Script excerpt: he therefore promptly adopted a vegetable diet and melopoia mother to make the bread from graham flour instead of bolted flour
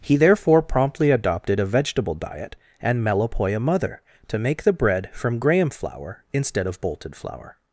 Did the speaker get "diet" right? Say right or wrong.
right